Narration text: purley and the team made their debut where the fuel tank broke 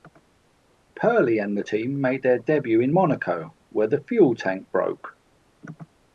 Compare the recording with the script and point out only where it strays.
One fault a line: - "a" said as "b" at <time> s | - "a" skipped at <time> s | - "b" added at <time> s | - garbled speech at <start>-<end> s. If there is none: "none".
- "in monaco" added at 2.8 s